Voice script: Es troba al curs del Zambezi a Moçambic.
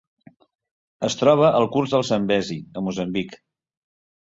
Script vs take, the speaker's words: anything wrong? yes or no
no